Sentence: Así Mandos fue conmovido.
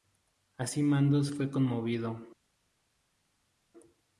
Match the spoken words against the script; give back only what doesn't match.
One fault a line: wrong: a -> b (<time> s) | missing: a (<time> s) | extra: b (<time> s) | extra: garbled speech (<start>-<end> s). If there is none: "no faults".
no faults